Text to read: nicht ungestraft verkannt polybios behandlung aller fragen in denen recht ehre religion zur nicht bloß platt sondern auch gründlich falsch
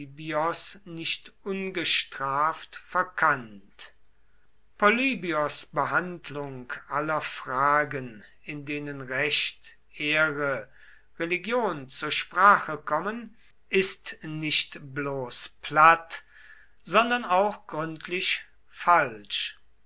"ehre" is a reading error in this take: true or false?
false